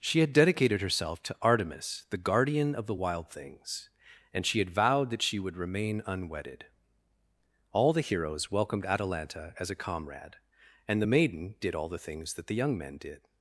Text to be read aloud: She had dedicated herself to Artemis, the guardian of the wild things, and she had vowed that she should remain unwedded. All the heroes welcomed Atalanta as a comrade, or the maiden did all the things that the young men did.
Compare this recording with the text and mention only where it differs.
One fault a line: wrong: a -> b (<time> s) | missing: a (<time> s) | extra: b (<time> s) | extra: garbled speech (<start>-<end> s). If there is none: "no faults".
wrong: should -> would (5.4 s)
wrong: or -> and (10.9 s)